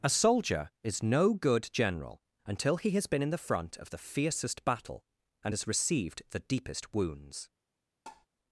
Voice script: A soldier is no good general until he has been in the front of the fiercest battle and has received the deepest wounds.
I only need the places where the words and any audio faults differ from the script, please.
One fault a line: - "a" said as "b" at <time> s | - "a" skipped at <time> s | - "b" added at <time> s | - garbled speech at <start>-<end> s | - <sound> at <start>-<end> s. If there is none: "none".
- tap at 8.1-8.3 s